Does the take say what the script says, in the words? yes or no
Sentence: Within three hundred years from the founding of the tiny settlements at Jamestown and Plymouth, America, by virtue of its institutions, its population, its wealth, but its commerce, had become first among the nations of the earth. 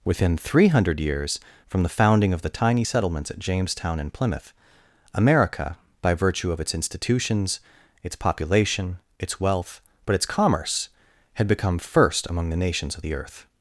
yes